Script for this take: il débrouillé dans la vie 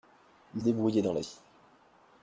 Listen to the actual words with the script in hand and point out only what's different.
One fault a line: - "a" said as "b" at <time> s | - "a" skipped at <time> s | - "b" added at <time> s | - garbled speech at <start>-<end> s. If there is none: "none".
none